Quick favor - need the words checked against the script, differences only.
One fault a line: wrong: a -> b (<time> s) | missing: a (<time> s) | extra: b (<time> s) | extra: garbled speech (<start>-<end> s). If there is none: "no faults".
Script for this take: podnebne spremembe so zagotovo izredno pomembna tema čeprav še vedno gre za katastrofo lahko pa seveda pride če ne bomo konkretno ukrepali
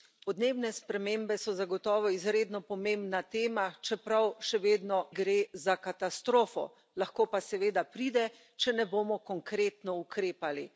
no faults